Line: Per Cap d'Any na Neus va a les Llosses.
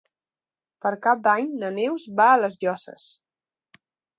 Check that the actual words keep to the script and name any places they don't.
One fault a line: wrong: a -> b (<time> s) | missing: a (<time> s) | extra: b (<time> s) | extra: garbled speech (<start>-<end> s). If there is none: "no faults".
no faults